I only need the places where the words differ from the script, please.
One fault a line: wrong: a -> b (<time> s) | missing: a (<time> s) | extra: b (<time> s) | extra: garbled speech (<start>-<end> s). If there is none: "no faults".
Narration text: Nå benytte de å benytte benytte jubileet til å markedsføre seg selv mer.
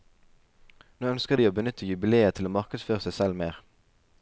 wrong: benytte -> ønsker (1.1 s)
missing: benytte (1.9 s)